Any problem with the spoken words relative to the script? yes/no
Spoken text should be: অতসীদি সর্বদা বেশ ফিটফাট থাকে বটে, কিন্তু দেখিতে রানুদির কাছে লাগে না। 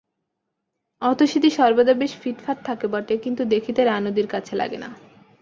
no